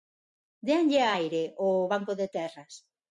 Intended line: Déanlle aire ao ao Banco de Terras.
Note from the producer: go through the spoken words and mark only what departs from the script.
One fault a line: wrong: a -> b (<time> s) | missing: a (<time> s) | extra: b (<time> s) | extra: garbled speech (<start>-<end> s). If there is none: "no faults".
missing: ao (1.9 s)